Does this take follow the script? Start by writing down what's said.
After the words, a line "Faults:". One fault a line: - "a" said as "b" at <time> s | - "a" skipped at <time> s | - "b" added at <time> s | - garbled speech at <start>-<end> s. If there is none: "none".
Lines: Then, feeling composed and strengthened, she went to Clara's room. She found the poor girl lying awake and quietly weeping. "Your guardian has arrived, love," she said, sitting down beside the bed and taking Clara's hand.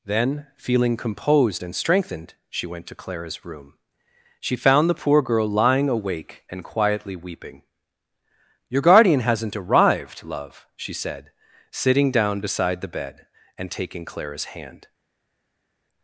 Then, feeling composed and strengthened, she went to Clara's room. She found the poor girl lying awake and quietly weeping. "Your guardian hasn't arrived, love," she said, sitting down beside the bed and taking Clara's hand.
Faults:
- "has" said as "hasn't" at 9.2 s